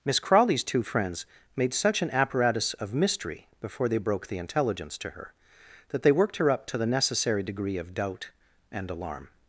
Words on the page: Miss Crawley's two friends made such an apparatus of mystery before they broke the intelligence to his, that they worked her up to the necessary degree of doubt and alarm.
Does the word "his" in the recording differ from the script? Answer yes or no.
yes